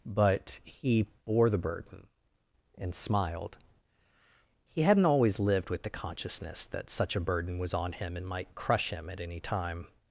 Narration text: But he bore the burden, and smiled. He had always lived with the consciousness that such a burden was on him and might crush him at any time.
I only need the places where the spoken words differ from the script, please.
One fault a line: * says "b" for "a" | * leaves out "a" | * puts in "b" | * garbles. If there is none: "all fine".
* says "hadn't" for "had"